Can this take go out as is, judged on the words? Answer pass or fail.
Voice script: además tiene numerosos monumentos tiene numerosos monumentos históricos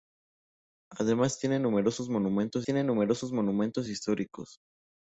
pass